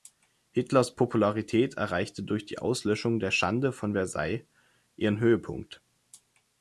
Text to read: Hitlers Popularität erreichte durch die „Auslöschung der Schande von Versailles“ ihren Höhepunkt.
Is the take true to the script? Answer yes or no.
yes